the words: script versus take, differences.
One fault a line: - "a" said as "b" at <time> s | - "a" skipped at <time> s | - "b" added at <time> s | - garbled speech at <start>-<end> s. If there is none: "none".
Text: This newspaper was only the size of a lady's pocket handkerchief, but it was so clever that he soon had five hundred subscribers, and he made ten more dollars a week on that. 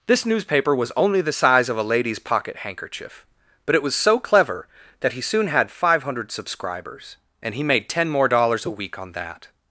none